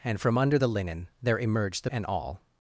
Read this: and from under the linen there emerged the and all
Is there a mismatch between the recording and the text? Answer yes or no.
no